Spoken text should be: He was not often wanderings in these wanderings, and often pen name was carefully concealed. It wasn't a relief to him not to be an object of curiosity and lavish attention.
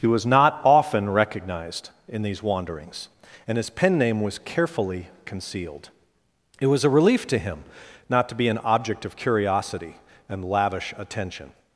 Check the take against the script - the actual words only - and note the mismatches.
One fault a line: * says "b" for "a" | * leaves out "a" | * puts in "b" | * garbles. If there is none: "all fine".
* says "recognized" for "wanderings"
* says "his" for "often"
* says "was" for "wasn't"